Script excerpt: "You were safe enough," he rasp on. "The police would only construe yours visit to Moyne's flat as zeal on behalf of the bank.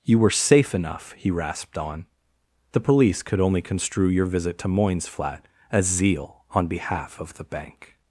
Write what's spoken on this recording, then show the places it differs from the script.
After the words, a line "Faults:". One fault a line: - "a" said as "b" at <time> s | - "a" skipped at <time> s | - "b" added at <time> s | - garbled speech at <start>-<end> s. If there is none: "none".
"You were safe enough," he rasped on. "The police could only construe your visit to Moyne's flat as zeal on behalf of the bank.
Faults:
- "rasp" said as "rasped" at 1.3 s
- "would" said as "could" at 3.2 s
- "yours" said as "your" at 4.1 s